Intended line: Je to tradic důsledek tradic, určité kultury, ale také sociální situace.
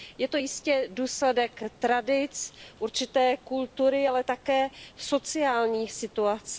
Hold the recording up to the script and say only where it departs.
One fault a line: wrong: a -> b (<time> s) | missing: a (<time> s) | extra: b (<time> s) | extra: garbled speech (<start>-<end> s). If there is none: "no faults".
wrong: tradic -> jistě (0.4 s)